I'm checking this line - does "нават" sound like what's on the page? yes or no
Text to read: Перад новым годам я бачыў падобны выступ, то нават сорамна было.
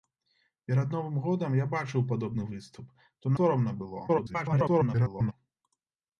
no